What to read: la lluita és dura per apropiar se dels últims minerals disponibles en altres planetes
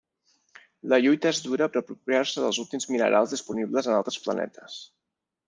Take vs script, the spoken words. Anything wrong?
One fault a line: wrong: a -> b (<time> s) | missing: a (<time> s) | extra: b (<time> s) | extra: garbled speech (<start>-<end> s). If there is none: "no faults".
no faults